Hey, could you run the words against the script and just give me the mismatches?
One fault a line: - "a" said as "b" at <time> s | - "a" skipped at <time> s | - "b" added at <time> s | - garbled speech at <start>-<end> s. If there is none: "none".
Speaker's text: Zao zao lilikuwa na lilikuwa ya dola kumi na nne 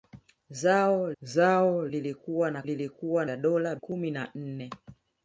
none